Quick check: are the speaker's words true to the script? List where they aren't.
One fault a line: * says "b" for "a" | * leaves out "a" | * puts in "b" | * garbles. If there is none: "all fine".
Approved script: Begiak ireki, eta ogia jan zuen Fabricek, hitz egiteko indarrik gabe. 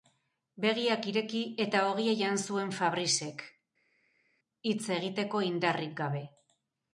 all fine